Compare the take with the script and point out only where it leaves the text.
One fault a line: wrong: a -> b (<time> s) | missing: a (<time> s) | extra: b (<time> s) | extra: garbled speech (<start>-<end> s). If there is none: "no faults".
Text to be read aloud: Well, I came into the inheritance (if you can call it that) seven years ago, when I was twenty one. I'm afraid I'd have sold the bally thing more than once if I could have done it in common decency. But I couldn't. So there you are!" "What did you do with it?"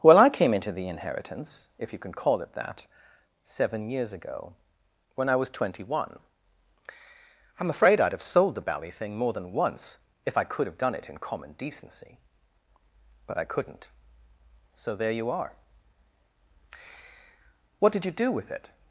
no faults